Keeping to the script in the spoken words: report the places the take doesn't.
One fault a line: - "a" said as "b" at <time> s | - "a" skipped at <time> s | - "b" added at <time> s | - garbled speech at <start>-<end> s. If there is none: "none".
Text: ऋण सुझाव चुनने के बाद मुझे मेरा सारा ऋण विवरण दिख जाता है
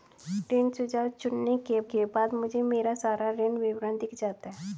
- "के" added at 1.9 s